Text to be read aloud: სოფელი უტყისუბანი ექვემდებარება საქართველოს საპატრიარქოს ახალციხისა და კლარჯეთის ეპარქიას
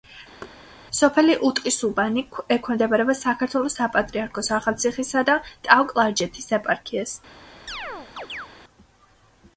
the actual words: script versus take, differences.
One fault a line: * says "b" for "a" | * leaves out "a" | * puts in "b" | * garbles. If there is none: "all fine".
* puts in "ტაო"